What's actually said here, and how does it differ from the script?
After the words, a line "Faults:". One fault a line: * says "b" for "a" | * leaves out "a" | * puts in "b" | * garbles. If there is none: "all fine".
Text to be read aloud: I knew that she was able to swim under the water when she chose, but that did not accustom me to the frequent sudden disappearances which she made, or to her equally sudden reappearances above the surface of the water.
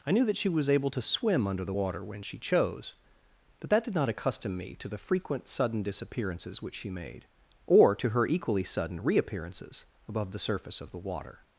I knew that she was able to swim under the water when she chose, but that did not accustom me to the frequent sudden disappearances which she made, or to her equally sudden reappearances above the surface of the water.
Faults:
all fine